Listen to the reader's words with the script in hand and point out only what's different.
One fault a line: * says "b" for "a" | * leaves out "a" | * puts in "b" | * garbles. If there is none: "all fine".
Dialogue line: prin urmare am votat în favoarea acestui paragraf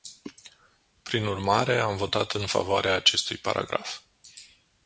all fine